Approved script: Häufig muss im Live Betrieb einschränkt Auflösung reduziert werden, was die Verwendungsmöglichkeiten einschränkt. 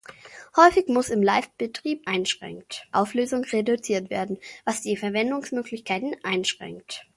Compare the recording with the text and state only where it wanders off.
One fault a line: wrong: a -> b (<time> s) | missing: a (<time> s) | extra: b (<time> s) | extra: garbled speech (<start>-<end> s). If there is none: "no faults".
no faults